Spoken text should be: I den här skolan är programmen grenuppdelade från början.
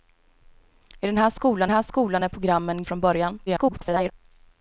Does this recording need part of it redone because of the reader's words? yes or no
yes